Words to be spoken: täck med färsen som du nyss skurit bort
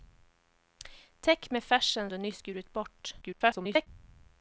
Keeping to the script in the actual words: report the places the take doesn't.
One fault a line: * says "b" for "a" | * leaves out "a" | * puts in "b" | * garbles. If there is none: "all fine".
* leaves out "som"
* garbles